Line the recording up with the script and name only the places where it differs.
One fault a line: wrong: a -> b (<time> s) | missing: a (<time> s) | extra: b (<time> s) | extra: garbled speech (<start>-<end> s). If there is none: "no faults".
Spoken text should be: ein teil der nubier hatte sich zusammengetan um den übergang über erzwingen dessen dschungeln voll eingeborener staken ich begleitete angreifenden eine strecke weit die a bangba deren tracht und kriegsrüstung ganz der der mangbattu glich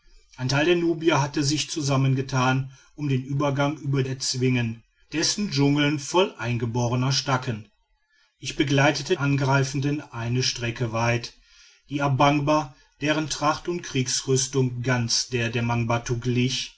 no faults